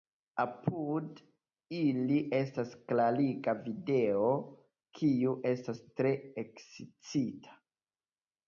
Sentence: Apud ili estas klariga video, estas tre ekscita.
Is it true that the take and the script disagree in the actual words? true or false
true